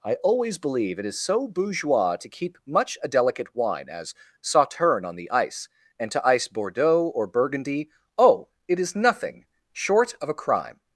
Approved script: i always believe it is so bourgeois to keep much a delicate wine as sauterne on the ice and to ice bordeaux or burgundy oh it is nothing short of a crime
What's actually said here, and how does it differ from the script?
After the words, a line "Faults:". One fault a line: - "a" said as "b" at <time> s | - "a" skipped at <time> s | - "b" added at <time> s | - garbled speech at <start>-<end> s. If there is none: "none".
i always believe it is so bourgeois to keep much a delicate wine as sauterne on the ice and to ice bordeaux or burgundy oh it is nothing short of a crime
Faults:
none